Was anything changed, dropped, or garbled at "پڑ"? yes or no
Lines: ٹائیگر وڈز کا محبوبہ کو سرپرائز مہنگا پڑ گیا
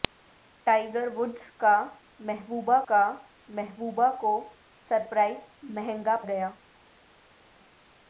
yes